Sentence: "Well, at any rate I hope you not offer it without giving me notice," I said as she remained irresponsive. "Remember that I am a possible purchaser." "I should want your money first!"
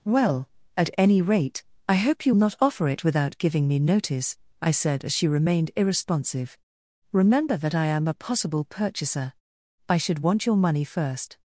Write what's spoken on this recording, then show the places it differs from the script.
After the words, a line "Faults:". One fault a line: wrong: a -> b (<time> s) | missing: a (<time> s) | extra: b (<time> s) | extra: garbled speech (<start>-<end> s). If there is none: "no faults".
"Well, at any rate I hope you not offer it without giving me notice," I said as she remained irresponsive. "Remember that I am a possible purchaser." "I should want your money first!"
Faults:
no faults